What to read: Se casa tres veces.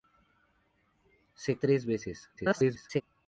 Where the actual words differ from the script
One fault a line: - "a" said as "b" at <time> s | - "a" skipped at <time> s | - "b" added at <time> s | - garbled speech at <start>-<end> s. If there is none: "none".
- "casa" skipped at 1.6 s
- garbled speech at 2.4-3.0 s